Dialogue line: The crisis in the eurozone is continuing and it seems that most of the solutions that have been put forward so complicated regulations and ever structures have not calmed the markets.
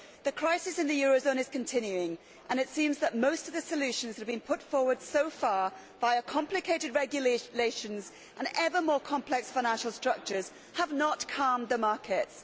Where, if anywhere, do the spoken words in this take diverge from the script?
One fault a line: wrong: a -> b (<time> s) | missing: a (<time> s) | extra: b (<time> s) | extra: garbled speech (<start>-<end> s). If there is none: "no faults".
extra: far via (5.3 s)
extra: more complex financial (8.8 s)